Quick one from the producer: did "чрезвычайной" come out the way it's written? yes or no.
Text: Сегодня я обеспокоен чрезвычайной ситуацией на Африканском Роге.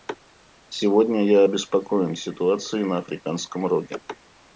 no